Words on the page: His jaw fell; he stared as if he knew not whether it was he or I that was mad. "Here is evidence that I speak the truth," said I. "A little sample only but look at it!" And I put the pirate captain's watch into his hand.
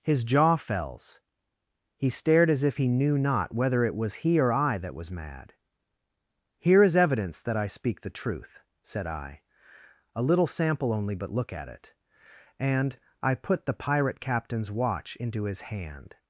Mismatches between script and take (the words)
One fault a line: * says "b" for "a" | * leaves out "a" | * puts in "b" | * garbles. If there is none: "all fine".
* says "fells" for "fell"